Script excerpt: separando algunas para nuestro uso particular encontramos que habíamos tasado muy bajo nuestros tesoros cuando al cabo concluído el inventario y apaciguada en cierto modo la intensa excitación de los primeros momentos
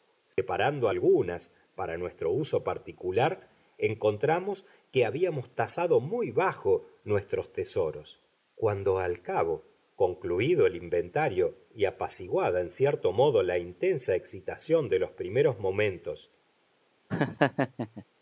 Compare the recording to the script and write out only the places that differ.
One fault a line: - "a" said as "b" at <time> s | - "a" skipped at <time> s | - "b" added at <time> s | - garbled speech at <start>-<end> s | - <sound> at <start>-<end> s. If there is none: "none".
- dropout at 0.3-0.4 s
- laugh at 17.1-18.0 s